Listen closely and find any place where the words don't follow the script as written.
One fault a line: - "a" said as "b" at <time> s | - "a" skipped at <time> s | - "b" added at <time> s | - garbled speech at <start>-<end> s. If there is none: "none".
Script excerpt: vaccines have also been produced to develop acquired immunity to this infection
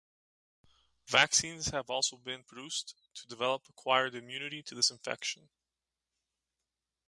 none